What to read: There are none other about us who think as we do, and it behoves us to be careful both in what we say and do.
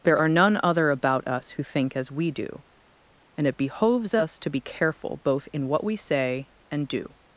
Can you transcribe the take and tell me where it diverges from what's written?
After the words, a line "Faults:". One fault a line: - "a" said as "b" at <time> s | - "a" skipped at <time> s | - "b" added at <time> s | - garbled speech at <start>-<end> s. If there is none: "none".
There are none other about us who think as we do, and it behoves us to be careful both in what we say and do.
Faults:
none